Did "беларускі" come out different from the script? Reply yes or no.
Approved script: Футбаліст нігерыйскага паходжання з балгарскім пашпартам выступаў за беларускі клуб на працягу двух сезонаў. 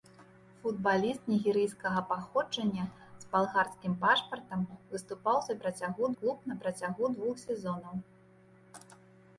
yes